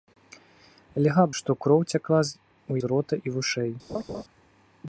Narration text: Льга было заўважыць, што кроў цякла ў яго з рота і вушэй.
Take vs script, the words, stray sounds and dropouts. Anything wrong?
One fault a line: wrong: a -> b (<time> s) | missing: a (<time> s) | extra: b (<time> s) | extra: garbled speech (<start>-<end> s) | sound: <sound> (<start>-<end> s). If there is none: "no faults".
missing: было заўважыць (1.2 s)
missing: яго (2.7 s)
sound: laugh (3.9-4.2 s)